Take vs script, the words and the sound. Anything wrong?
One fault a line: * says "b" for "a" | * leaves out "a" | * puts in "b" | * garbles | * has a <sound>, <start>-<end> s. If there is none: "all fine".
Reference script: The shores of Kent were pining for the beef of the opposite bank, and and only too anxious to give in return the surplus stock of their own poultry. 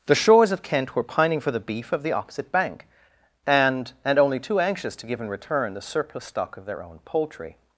all fine